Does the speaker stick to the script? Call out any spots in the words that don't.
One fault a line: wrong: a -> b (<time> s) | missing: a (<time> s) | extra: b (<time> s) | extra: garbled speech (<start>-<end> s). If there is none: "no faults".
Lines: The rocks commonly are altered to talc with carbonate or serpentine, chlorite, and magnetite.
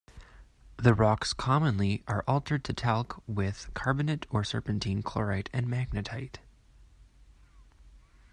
no faults